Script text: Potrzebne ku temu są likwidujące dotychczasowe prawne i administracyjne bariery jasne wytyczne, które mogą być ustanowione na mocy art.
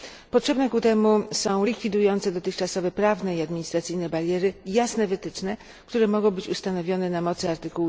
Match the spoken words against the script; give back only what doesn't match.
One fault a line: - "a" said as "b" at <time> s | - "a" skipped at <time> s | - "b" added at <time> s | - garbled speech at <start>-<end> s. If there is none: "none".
none